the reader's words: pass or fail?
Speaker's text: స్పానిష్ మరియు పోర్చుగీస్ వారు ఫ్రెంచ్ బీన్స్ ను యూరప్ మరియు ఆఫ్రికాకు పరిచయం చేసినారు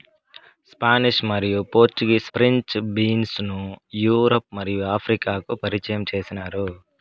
fail